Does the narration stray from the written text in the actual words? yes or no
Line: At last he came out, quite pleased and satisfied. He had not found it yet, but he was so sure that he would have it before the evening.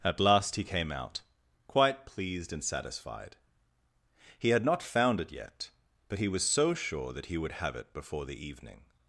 no